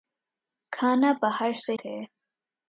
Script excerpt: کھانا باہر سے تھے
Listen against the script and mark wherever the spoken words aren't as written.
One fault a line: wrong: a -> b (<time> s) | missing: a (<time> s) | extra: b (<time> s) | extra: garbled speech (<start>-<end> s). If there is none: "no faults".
no faults